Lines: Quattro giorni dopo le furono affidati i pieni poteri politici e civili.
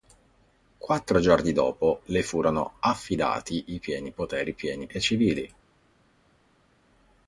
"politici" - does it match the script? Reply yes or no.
no